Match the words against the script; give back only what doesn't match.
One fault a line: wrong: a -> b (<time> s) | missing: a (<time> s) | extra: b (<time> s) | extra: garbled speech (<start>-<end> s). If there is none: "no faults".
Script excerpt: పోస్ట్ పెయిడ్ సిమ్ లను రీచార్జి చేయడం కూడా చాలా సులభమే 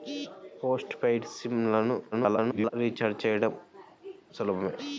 extra: garbled speech (2.1-2.7 s)
missing: కూడా చాలా (3.5 s)